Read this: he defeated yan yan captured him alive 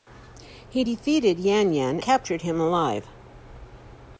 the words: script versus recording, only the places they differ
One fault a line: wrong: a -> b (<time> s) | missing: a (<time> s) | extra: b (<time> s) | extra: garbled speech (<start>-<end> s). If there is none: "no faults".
no faults